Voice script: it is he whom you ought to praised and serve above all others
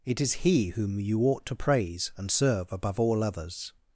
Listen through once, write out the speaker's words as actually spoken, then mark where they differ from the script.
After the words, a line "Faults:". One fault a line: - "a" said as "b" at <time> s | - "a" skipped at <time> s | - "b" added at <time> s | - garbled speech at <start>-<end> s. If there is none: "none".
it is he whom you ought to praise and serve above all others
Faults:
- "praised" said as "praise" at 1.6 s